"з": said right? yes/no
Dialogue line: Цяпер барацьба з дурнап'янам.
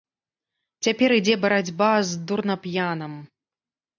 yes